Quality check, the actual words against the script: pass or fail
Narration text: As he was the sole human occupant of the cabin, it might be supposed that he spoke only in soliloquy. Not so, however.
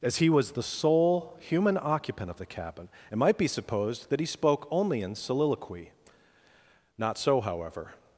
pass